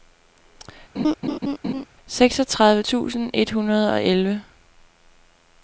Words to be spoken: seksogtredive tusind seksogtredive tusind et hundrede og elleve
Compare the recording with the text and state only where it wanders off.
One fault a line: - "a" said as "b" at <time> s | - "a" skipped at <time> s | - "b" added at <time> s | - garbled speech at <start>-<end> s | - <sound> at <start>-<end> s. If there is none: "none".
- laugh at 0.9-1.9 s
- "seksogtredive tusind" skipped at 3.3 s